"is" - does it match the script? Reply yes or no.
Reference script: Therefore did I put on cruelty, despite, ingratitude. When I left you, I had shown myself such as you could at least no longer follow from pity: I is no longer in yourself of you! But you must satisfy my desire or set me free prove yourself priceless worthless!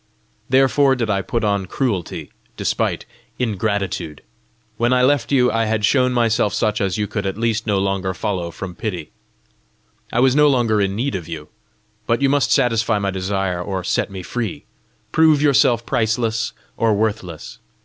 no